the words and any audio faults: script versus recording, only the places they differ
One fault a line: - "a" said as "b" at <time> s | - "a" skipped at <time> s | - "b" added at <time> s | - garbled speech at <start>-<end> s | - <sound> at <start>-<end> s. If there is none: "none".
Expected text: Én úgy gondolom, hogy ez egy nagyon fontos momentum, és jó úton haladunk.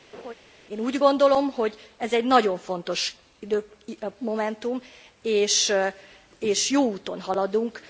- laugh at 0.1-0.3 s